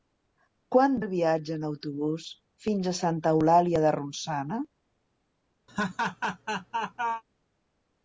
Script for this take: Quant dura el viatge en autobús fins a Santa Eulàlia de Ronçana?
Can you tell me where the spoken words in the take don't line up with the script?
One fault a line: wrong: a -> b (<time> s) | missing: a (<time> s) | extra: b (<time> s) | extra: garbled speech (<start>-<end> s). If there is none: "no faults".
missing: dura (0.9 s)